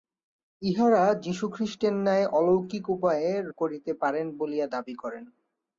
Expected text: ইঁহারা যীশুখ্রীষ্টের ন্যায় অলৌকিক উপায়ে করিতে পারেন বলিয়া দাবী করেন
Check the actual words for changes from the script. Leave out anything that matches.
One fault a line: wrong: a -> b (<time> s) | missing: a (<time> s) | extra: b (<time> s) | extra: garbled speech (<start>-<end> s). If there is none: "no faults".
no faults